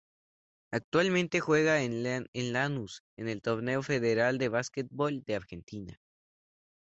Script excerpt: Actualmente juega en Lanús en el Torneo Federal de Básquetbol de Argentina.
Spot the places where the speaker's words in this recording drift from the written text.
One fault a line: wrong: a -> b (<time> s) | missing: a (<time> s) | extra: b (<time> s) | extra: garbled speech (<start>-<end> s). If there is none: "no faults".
no faults